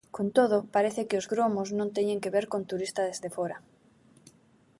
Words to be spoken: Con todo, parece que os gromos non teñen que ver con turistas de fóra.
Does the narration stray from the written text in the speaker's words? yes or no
no